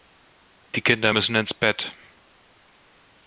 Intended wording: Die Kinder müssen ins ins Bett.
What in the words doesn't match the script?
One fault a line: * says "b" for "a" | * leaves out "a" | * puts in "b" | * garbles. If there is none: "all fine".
* leaves out "ins"